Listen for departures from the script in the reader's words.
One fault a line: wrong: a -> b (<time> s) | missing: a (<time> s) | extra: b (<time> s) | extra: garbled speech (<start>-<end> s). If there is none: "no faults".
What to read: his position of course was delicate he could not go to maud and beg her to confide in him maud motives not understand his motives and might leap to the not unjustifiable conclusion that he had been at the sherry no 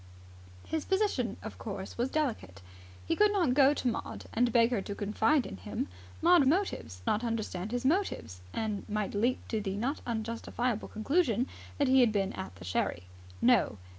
no faults